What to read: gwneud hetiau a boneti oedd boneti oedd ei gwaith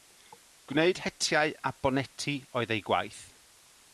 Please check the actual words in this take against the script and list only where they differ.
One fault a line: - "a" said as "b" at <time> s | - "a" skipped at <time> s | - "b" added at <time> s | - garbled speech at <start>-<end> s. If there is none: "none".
- "boneti oedd" skipped at 2.7 s